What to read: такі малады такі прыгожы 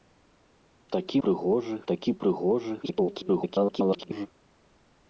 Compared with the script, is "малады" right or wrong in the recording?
wrong